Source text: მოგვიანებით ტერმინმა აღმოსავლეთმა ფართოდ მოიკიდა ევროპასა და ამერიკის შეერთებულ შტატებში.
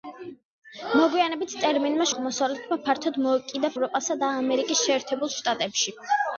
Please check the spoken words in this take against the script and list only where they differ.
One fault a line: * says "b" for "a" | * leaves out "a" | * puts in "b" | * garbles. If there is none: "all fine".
all fine